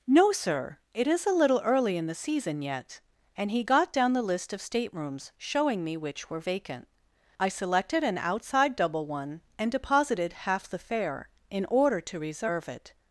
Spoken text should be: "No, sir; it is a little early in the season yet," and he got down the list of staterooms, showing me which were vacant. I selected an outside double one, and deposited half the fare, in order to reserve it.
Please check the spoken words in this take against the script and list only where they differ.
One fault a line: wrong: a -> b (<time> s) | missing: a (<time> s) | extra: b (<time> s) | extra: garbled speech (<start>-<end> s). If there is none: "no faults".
no faults